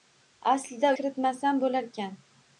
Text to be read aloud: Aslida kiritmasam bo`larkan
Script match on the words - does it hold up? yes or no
yes